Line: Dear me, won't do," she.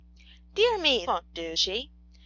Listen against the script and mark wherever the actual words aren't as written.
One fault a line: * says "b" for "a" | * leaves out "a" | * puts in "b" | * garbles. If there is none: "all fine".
all fine